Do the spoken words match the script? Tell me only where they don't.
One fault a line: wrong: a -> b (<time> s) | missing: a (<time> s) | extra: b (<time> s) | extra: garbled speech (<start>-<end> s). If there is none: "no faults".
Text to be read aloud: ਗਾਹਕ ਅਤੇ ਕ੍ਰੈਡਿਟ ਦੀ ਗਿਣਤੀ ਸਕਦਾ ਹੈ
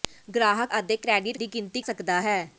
no faults